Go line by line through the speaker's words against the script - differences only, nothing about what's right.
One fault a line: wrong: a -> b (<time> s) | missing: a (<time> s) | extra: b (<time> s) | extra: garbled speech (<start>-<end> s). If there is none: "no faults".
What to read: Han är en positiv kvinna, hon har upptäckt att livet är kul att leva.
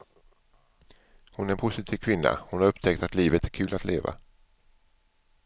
wrong: Han -> Hon (1.3 s)